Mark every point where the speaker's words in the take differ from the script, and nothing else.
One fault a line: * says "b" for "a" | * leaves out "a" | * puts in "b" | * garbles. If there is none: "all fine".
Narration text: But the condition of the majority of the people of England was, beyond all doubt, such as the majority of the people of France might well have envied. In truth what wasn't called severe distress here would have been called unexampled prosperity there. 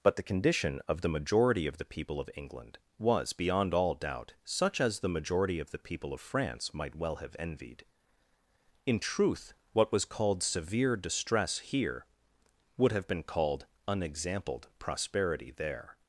* says "was" for "wasn't"